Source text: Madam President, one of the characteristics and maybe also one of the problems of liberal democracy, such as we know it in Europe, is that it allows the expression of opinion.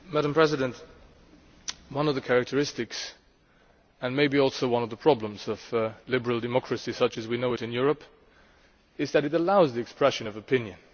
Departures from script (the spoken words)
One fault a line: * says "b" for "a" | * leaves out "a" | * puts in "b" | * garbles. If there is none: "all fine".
all fine